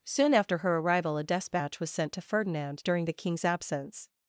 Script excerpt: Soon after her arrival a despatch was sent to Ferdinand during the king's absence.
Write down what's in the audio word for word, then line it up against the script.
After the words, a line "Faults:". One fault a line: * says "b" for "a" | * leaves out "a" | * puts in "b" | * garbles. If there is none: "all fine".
Soon after her arrival a despatch was sent to Ferdinand during the king's absence.
Faults:
all fine